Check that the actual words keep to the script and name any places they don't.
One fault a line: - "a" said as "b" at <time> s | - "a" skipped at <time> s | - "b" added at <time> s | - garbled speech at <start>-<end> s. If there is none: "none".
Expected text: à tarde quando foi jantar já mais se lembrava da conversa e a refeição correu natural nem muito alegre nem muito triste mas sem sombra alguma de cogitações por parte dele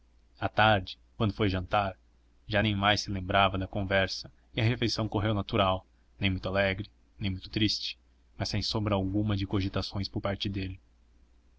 - "nem" added at 2.6 s